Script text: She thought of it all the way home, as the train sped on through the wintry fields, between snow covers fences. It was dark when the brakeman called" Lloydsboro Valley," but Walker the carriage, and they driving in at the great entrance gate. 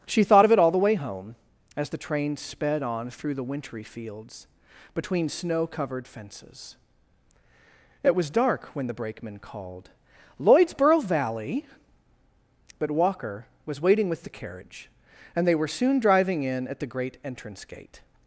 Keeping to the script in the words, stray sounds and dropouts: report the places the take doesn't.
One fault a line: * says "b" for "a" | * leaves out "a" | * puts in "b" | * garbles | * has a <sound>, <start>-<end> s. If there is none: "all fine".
* says "covered" for "covers"
* puts in "was waiting with"
* puts in "were soon"